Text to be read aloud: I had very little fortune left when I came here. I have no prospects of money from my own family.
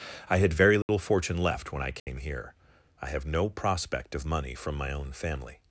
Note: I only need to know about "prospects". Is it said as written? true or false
false